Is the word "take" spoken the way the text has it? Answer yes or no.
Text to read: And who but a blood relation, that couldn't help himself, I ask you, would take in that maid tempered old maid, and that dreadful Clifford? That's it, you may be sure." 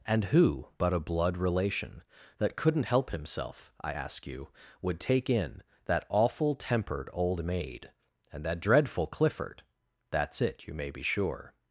yes